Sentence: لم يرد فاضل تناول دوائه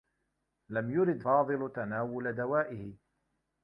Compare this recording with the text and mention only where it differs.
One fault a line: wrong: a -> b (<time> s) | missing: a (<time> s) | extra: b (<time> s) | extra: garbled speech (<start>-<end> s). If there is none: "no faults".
no faults